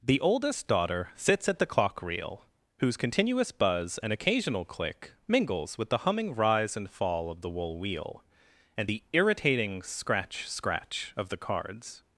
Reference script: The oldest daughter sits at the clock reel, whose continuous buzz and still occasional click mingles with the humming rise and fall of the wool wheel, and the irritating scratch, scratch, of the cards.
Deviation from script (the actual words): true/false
true